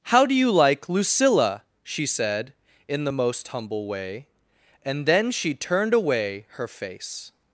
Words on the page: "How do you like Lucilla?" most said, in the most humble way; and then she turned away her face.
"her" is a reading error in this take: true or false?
false